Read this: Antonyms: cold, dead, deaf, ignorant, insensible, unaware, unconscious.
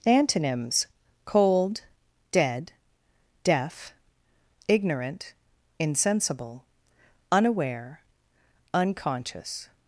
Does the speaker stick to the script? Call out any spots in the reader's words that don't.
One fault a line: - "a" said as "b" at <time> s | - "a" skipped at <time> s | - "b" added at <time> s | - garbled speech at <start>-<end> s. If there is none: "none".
none